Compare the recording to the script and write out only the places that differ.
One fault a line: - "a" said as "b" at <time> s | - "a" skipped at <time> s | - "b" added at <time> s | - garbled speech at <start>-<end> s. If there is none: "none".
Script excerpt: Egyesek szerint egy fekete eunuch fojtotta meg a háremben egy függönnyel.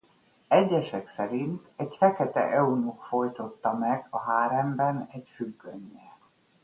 none